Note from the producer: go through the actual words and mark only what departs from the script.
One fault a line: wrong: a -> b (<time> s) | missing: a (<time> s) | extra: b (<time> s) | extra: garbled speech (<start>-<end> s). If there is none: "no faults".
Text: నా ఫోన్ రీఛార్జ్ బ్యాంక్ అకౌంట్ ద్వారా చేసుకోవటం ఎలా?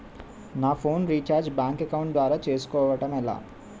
no faults